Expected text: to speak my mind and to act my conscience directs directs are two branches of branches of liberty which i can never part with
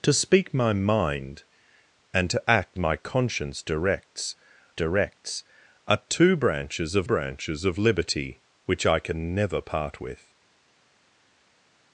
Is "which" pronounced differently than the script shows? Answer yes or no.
no